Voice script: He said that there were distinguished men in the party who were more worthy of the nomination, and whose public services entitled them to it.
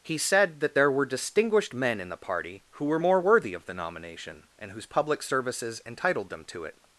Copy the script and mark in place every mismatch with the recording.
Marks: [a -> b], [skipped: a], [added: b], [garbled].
He said that there were distinguished men in the party who were more worthy of the nomination, and whose public services entitled them to it.